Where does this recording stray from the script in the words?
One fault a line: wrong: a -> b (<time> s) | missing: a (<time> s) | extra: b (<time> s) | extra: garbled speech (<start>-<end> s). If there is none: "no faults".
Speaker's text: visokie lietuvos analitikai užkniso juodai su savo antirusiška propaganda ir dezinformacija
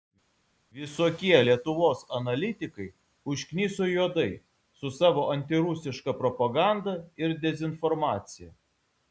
no faults